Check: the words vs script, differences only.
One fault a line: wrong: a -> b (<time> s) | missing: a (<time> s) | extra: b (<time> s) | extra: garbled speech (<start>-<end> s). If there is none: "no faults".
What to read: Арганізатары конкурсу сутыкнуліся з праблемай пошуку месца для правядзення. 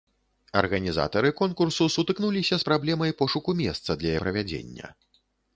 no faults